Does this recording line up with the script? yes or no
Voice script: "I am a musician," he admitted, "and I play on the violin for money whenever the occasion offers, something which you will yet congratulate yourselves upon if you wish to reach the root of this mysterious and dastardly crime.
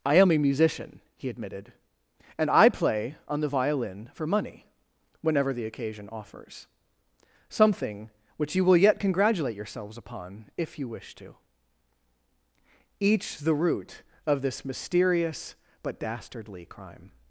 no